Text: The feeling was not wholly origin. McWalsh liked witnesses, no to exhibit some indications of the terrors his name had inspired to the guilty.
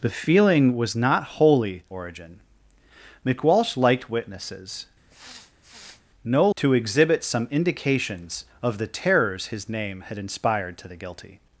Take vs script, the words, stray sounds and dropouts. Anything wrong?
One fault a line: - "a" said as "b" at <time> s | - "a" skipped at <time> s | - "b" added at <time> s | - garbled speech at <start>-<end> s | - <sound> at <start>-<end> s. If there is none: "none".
- sniff at 5.1-6.0 s